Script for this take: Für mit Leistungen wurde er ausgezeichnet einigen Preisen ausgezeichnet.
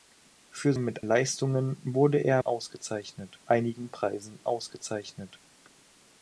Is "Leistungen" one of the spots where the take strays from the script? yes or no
no